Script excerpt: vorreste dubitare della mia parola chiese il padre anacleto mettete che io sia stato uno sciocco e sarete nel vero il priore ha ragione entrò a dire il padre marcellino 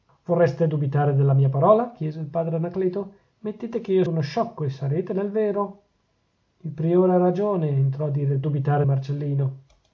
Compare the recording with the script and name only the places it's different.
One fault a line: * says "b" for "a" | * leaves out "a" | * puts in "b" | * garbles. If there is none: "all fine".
* leaves out "sia stato"
* says "dubitare" for "padre"